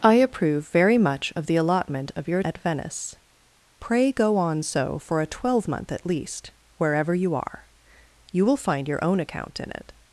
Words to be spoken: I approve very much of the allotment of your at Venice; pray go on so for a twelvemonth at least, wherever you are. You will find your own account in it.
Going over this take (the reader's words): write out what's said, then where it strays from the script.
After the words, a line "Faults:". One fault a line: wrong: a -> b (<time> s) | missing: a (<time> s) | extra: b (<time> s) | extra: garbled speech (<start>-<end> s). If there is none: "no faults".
I approve very much of the allotment of your at Venice; pray go on so for a twelvemonth at least, wherever you are. You will find your own account in it.
Faults:
no faults